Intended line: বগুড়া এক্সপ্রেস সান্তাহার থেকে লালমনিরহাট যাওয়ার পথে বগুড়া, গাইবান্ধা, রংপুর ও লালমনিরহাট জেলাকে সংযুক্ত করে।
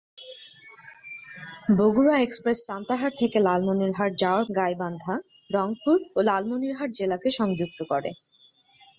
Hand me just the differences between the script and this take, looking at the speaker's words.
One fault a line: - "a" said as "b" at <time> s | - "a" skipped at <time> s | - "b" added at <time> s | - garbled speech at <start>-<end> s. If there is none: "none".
- "পথে বগুড়া" skipped at 4.5 s